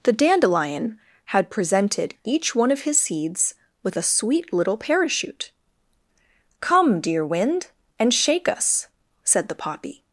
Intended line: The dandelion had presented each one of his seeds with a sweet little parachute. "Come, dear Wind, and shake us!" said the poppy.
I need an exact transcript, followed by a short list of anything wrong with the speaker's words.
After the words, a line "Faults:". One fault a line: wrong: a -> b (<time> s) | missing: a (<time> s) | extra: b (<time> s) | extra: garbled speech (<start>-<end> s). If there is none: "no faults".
The dandelion had presented each one of his seeds with a sweet little parachute. "Come, dear Wind, and shake us!" said the poppy.
Faults:
no faults